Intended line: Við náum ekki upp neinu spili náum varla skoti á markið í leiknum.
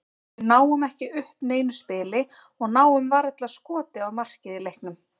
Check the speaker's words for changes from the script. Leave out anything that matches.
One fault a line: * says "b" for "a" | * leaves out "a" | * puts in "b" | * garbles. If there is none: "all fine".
* puts in "og"